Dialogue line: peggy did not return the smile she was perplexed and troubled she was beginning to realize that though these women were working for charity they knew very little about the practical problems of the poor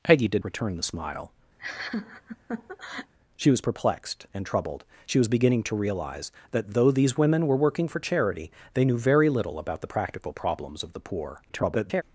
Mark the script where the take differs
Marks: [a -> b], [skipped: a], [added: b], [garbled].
peggy did [skipped: not] return the smile she was perplexed and troubled she was beginning to realize that though these women were working for charity they knew very little about the practical problems of the poor [garbled]